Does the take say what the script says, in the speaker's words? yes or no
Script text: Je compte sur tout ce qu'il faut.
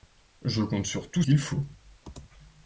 no